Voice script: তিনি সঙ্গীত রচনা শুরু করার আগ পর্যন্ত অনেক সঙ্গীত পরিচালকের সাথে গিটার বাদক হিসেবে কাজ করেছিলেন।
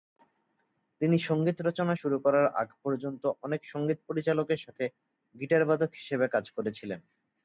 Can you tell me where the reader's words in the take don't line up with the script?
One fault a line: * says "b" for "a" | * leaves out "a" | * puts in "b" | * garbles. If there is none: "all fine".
all fine